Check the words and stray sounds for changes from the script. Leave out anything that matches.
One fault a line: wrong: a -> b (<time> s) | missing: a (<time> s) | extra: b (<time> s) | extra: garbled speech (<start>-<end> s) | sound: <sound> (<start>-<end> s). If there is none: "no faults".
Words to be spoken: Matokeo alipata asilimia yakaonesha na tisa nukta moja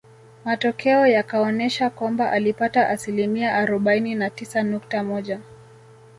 extra: yakaonesha kwamba (1.1 s)
wrong: yakaonesha -> arobaini (3.5 s)